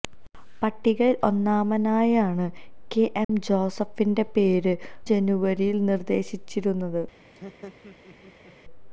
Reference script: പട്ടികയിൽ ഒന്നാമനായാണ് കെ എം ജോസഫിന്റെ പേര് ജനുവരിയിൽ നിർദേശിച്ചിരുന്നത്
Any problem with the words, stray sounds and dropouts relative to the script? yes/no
yes